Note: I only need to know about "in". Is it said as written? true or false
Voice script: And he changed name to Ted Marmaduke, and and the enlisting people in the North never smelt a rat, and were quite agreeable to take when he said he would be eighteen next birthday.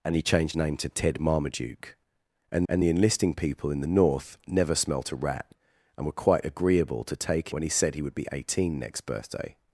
true